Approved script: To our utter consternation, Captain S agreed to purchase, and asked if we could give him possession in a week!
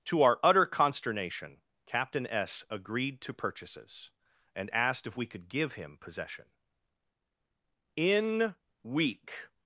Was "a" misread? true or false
true